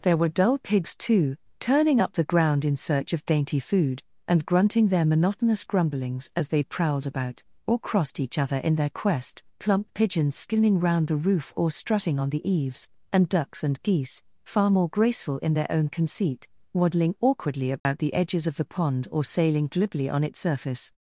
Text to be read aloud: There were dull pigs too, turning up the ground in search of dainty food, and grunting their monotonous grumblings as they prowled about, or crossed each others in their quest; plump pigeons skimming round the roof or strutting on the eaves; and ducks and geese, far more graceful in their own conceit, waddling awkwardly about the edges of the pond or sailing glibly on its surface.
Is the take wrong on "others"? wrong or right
wrong